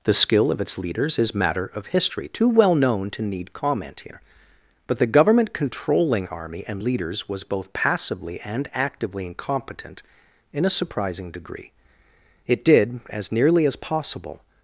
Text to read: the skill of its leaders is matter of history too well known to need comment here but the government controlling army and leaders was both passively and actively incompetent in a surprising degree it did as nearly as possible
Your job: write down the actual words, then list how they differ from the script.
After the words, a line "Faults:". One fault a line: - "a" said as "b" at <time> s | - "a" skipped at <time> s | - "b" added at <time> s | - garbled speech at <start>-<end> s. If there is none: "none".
the skill of its leaders is matter of history too well known to need comment here but the government controlling army and leaders was both passively and actively incompetent in a surprising degree it did as nearly as possible
Faults:
none